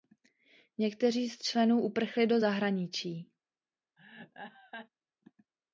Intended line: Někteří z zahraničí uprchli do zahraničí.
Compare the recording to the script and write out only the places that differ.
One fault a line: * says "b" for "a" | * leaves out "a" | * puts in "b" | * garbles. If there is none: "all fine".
* says "členů" for "zahraničí"